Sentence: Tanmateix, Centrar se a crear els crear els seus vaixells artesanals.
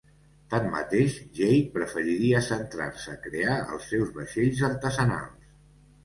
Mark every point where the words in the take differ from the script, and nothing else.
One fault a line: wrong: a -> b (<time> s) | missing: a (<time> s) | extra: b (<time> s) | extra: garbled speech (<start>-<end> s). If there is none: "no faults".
extra: Jake preferiria (1.4 s)
missing: crear els (3.9 s)